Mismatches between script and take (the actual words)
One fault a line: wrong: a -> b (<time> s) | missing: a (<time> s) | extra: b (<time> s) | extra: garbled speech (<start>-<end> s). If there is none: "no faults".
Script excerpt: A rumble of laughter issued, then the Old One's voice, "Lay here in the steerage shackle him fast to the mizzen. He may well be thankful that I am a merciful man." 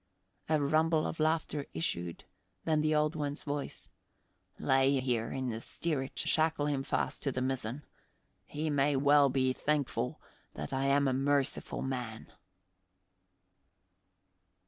no faults